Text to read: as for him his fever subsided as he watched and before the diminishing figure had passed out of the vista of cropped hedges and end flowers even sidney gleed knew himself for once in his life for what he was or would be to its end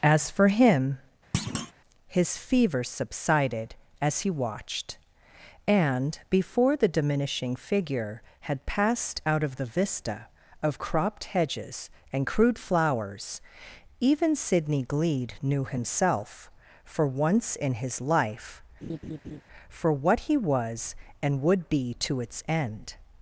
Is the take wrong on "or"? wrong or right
wrong